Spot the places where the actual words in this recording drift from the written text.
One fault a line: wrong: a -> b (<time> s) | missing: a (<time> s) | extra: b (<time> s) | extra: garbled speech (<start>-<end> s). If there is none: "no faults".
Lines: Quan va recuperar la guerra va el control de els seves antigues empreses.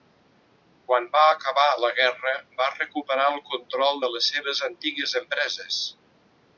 wrong: recuperar -> acabar (1.3 s)
extra: recuperar (2.8 s)
wrong: els -> les (4.2 s)